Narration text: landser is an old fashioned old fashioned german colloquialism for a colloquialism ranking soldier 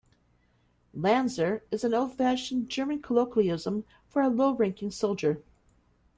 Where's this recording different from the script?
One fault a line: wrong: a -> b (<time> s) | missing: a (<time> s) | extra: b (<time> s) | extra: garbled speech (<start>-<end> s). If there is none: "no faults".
missing: old fashioned (2.7 s)
wrong: colloquialism -> low (4.3 s)